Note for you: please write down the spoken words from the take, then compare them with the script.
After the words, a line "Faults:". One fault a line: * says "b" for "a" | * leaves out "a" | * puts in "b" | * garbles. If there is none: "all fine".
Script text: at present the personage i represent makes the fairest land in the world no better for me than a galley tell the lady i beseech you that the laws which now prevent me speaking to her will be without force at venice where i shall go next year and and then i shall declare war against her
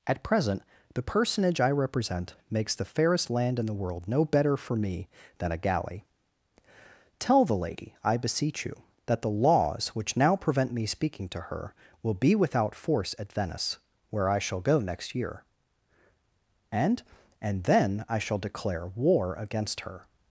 at present the personage i represent makes the fairest land in the world no better for me than a galley tell the lady i beseech you that the laws which now prevent me speaking to her will be without force at venice where i shall go next year and and then i shall declare war against her
Faults:
all fine